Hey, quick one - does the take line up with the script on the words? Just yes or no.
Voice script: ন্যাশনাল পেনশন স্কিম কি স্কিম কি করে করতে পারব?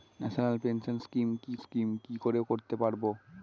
yes